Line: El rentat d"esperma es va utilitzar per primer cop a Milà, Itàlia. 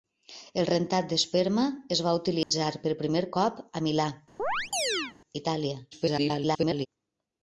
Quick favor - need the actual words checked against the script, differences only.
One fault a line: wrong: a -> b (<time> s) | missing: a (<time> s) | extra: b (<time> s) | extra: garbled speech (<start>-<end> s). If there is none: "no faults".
extra: garbled speech (5.9-6.9 s)